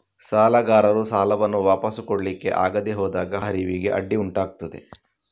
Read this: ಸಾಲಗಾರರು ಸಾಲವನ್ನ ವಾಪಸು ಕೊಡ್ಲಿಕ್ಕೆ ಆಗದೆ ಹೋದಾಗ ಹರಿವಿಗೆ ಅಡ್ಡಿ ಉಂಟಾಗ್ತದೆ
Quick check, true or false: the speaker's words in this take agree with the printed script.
true